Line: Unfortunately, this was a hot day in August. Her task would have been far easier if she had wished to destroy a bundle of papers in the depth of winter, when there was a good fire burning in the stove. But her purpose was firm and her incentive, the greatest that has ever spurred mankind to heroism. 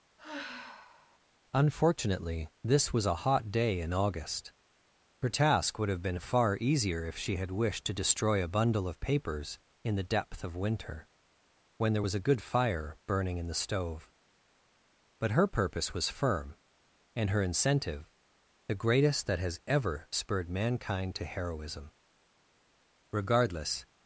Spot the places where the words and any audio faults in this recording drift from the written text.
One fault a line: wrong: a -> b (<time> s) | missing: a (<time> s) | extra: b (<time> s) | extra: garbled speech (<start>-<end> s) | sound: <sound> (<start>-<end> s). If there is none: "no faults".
sound: sigh (0.2-1.2 s)
extra: Regardless (23.1 s)